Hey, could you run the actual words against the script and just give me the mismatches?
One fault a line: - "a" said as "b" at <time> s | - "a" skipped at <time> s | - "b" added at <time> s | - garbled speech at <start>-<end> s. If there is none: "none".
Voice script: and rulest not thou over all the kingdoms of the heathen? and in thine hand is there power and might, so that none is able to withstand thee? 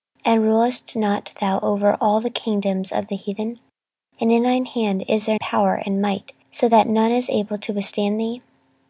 none